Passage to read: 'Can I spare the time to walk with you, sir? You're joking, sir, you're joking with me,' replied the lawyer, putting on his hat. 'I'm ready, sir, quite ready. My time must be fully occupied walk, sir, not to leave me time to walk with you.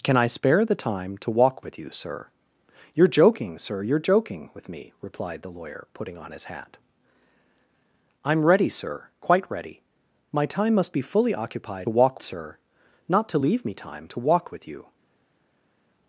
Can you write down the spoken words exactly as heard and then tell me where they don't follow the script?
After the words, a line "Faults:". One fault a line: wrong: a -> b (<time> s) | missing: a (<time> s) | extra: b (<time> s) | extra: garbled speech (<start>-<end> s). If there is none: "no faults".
'Can I spare the time to walk with you, sir? You're joking, sir, you're joking with me,' replied the lawyer, putting on his hat. 'I'm ready, sir, quite ready. My time must be fully occupied walk, sir, not to leave me time to walk with you.
Faults:
no faults